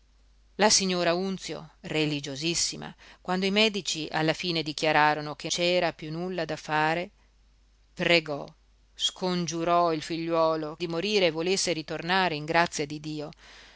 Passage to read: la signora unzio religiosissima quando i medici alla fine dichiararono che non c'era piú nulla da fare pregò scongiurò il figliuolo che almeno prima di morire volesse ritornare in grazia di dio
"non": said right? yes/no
no